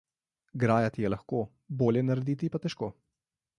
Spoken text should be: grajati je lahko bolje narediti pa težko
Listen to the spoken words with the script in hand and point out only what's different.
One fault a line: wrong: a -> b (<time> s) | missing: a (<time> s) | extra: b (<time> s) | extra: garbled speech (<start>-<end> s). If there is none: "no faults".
no faults